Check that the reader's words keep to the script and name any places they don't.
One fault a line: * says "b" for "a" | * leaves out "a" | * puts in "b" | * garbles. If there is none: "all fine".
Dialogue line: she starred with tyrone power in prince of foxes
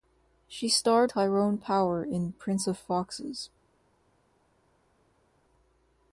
* leaves out "with"